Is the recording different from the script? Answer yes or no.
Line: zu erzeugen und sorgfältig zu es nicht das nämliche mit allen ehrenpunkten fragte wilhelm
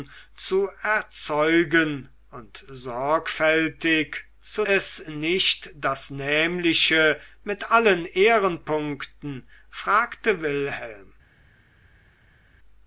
no